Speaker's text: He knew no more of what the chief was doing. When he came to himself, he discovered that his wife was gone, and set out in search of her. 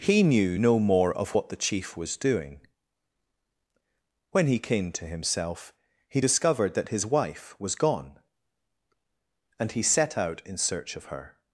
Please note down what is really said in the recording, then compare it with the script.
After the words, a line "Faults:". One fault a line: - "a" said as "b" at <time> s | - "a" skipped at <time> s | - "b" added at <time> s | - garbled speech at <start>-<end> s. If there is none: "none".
He knew no more of what the chief was doing. When he came to himself, he discovered that his wife was gone, and he set out in search of her.
Faults:
- "he" added at 9.7 s